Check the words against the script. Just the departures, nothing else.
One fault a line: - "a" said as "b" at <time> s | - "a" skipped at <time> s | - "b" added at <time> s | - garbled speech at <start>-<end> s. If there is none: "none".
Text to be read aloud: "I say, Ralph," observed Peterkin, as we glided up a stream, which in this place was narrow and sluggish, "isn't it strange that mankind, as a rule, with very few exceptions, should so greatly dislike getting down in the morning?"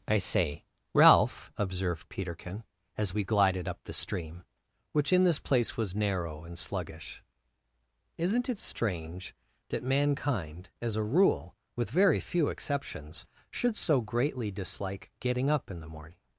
- "a" said as "the" at 3.8 s
- "down" said as "up" at 15.5 s